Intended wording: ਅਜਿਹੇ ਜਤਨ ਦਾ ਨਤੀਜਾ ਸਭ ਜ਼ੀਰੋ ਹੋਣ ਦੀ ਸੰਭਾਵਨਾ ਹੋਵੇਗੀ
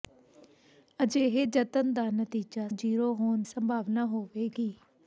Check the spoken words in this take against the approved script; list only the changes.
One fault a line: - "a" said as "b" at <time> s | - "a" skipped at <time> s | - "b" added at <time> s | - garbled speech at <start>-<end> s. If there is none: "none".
- "ਸਭ" skipped at 2.7 s
- "ਦੀ" skipped at 3.4 s